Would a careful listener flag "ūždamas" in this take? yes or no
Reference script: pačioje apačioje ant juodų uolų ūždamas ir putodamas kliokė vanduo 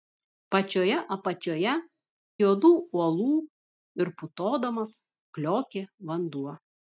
yes